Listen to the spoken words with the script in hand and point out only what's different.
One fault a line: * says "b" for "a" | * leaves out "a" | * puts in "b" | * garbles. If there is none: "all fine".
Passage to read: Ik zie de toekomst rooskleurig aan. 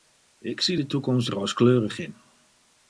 * says "in" for "aan"